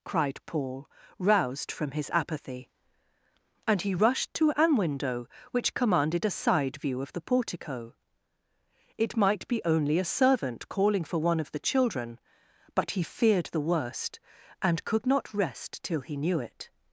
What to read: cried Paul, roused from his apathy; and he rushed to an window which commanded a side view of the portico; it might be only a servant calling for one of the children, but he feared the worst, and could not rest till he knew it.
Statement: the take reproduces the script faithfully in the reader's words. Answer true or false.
true